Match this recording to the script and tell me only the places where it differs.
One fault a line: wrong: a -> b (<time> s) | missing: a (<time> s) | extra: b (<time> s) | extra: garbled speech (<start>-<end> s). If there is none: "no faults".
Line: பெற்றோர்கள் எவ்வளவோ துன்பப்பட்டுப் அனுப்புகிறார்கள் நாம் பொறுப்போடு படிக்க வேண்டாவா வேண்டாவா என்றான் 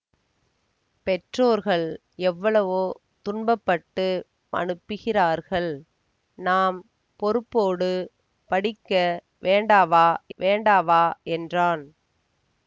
no faults